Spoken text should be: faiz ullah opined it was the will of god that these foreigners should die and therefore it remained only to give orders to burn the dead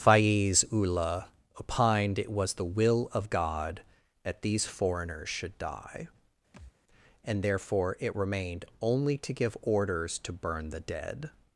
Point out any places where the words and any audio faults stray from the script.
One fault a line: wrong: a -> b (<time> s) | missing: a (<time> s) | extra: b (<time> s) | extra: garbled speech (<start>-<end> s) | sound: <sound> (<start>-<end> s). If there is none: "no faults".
sound: thud (6.5-6.7 s)